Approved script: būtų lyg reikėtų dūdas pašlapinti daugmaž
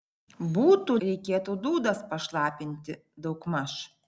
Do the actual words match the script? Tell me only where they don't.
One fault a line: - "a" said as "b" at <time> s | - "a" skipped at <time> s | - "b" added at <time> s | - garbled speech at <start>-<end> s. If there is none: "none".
- "lyg" skipped at 0.9 s